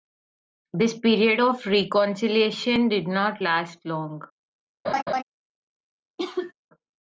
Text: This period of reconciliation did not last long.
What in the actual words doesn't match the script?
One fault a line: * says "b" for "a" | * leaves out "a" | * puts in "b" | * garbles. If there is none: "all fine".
all fine